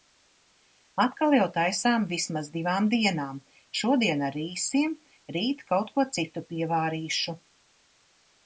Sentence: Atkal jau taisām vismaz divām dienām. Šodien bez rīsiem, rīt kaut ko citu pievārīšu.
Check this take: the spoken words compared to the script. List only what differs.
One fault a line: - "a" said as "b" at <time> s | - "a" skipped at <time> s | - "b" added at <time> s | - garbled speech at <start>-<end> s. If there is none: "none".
- "bez" said as "ar" at 4.3 s